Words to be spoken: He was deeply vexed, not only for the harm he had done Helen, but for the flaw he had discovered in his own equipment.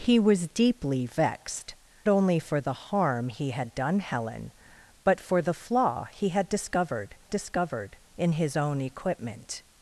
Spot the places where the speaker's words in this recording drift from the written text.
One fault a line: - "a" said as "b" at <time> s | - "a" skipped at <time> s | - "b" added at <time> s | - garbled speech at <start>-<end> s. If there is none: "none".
- "not" skipped at 1.8 s
- "discovered" added at 7.3 s